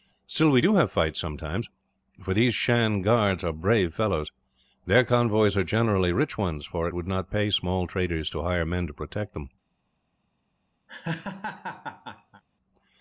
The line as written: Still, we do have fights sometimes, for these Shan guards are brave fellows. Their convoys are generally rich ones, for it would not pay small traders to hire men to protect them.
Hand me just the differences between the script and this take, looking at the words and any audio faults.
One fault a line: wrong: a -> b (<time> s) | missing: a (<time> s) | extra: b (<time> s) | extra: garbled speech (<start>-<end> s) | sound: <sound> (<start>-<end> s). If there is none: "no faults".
missing: it (6.9 s)
sound: laugh (10.9-12.4 s)